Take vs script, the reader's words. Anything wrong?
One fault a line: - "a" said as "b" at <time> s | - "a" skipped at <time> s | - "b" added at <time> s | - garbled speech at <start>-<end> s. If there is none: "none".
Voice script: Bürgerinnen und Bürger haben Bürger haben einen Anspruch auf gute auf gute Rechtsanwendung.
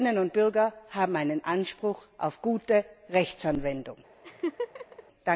- "Bürger haben" skipped at 1.2 s
- "auf gute" skipped at 2.8 s